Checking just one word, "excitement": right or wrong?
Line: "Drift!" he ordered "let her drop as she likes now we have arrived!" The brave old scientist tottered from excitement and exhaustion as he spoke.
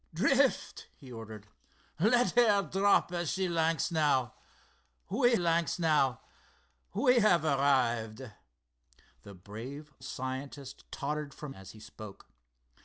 wrong